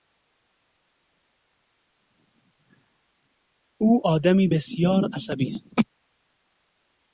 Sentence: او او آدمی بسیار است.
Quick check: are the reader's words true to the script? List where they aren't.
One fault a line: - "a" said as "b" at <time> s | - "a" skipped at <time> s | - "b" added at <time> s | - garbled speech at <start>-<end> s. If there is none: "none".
- "او" skipped at 4.0 s
- "عصبی" added at 5.1 s